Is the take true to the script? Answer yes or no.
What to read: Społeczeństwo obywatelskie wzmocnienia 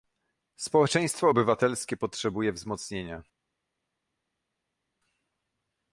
no